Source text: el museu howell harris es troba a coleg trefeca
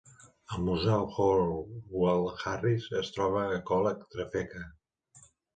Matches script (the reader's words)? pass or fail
pass